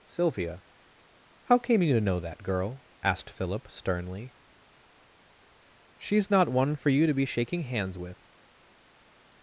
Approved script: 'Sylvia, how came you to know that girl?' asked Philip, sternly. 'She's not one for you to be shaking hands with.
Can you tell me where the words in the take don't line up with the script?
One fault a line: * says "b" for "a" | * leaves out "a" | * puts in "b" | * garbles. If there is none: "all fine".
all fine